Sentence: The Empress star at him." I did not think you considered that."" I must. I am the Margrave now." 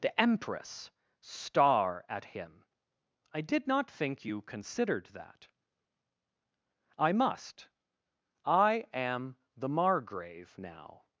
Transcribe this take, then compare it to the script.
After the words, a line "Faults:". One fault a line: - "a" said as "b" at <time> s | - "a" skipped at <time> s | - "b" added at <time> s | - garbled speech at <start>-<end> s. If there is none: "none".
The Empress star at him." I did not think you considered that."" I must. I am the Margrave now."
Faults:
none